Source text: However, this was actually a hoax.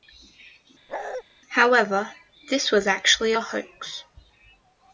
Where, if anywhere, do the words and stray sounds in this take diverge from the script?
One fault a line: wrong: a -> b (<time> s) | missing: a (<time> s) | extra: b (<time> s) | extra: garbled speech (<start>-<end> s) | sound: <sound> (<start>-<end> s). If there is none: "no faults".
sound: bark (0.9-1.2 s)